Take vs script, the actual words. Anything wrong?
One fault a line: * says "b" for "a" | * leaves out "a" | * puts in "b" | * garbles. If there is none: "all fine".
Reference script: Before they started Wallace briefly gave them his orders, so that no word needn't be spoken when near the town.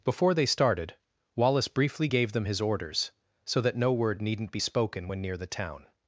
all fine